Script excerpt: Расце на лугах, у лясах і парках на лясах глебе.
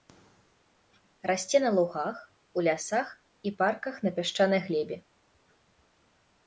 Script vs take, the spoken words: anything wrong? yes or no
yes